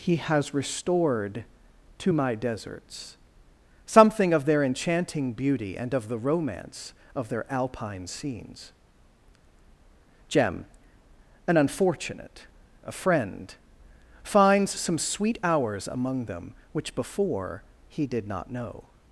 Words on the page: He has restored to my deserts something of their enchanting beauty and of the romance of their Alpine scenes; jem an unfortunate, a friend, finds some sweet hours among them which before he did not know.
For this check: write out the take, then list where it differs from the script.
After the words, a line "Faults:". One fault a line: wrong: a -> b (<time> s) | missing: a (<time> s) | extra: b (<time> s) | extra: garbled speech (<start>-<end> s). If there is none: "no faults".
He has restored to my deserts something of their enchanting beauty and of the romance of their Alpine scenes; jem an unfortunate, a friend, finds some sweet hours among them which before he did not know.
Faults:
no faults